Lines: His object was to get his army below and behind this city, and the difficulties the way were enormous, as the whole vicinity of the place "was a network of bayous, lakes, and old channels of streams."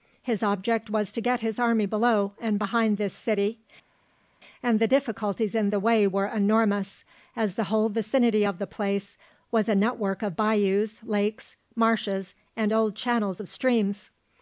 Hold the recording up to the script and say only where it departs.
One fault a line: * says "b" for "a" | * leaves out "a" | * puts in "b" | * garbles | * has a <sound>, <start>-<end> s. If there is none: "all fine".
* puts in "in"
* puts in "marshes"